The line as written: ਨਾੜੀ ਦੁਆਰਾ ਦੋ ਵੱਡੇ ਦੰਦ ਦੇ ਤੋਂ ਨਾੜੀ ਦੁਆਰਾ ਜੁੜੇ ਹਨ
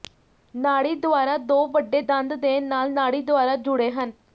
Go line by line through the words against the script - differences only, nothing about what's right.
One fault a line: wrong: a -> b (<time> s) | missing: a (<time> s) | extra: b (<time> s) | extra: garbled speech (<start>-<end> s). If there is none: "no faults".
wrong: ਤੋਂ -> ਨਾਲ (2.6 s)